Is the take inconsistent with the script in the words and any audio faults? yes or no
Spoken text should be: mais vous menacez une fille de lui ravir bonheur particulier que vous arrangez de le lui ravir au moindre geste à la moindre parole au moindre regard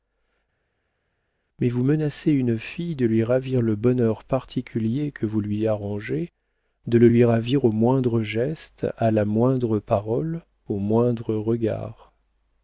yes